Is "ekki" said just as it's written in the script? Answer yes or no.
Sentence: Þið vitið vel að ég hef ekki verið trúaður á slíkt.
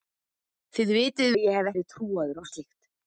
no